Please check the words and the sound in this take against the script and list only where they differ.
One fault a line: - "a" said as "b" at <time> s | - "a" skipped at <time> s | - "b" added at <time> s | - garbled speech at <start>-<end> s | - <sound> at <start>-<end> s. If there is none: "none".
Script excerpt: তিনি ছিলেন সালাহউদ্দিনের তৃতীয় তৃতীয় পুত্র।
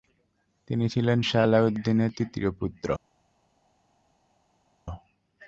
- "তৃতীয়" skipped at 2.5 s